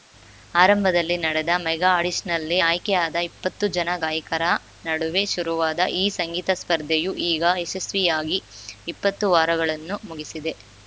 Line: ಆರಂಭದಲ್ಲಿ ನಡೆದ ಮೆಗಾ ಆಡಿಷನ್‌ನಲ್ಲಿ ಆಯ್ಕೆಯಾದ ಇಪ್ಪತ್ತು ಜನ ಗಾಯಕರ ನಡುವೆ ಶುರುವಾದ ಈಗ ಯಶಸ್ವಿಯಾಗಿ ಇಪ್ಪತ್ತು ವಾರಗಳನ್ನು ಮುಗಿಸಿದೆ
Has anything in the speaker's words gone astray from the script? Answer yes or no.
yes